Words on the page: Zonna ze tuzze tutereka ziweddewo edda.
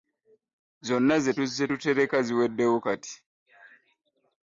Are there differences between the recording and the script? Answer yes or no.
yes